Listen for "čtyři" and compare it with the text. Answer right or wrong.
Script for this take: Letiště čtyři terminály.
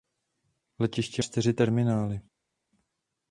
right